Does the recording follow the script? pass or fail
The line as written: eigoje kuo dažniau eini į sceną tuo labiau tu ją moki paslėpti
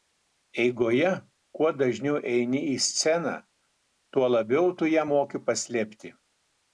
pass